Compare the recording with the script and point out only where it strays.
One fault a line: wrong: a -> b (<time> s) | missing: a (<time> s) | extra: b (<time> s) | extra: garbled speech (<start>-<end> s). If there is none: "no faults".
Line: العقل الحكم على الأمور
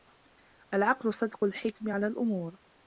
extra: صدق (1.1 s)